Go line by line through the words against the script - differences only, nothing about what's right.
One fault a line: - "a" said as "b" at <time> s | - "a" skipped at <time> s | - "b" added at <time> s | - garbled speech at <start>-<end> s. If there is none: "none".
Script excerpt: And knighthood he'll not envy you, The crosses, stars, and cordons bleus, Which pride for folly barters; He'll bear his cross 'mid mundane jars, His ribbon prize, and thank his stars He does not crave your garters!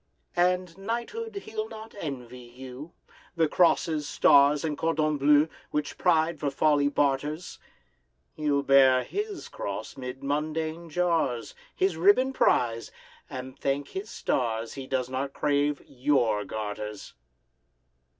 none